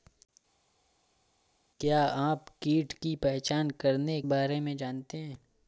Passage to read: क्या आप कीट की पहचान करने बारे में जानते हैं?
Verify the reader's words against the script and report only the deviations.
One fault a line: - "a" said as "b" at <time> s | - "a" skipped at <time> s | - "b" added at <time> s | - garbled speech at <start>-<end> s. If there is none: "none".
none